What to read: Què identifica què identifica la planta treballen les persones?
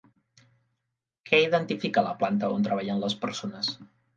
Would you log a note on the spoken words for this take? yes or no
yes